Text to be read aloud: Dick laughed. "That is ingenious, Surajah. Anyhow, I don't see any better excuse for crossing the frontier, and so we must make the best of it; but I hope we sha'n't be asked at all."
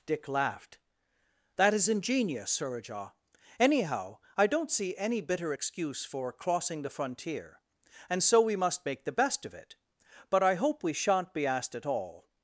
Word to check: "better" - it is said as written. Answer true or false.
false